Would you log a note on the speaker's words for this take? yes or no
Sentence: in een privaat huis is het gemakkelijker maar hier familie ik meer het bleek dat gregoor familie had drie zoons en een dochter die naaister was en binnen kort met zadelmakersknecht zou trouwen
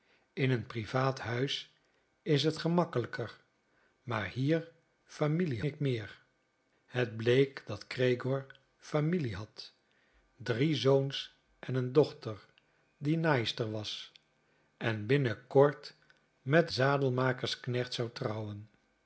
no